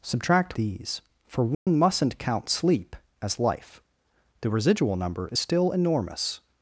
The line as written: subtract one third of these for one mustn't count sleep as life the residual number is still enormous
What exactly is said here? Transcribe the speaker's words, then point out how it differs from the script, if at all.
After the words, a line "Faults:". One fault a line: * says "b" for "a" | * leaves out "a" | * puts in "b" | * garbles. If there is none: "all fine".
subtract these for one mustn't count sleep as life the residual number is still enormous
Faults:
* leaves out "one third of"